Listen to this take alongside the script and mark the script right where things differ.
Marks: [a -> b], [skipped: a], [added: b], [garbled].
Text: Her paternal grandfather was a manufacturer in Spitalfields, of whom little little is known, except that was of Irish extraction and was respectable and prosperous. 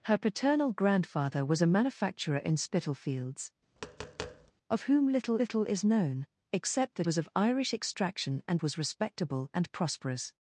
Her paternal grandfather was a manufacturer in Spitalfields, of whom little little is known, except that was of Irish extraction and was respectable and prosperous.